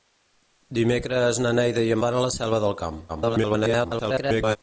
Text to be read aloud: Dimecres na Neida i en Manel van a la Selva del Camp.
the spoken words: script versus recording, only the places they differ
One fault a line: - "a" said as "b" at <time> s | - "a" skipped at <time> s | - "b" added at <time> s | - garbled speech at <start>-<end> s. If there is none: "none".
- "Manel" skipped at 2.0 s
- garbled speech at 3.1-4.6 s